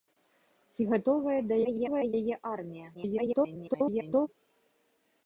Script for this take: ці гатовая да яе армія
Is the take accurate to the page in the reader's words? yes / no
no